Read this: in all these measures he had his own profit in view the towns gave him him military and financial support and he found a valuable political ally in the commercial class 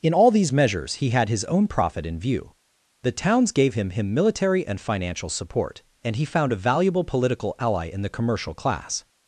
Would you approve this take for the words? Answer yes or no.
yes